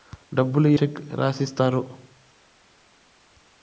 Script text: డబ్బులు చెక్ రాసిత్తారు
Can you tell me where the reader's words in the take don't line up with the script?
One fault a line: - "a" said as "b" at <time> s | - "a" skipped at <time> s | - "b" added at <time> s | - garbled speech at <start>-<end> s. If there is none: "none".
none